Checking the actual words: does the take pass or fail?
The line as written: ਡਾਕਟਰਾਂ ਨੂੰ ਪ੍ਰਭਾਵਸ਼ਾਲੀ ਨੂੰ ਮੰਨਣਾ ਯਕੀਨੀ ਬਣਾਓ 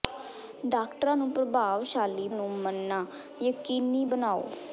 pass